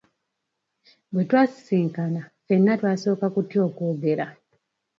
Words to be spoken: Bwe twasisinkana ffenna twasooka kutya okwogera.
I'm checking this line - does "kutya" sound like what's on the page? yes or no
yes